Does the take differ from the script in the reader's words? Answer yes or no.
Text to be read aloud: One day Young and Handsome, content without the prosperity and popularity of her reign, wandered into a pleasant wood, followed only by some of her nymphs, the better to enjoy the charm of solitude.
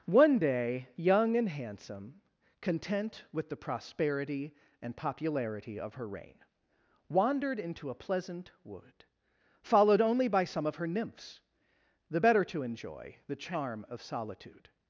yes